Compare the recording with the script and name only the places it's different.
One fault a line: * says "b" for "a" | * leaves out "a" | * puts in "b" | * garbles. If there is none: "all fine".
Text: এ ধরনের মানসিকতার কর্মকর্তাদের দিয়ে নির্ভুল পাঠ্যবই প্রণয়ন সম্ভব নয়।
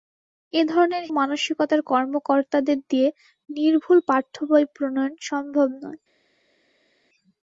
all fine